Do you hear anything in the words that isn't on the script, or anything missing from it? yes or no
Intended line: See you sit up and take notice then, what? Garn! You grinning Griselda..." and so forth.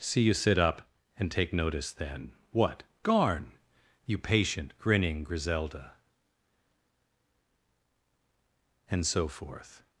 yes